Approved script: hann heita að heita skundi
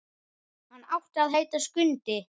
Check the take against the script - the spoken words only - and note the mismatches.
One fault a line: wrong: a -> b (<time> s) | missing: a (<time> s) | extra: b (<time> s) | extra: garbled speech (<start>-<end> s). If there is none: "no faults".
wrong: heita -> átti (1.0 s)